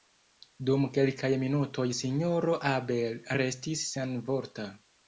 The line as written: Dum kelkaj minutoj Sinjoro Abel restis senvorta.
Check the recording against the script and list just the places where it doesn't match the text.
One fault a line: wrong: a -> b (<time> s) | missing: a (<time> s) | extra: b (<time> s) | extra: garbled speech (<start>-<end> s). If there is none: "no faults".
no faults